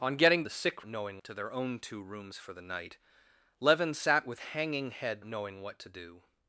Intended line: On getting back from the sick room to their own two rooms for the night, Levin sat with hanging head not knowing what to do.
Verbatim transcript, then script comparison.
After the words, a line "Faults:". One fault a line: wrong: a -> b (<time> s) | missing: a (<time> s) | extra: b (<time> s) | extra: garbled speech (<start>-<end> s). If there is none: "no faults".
On getting the sick knowing to their own two rooms for the night, Levin sat with hanging head knowing what to do.
Faults:
missing: back from (0.4 s)
wrong: room -> knowing (0.8 s)
missing: not (5.2 s)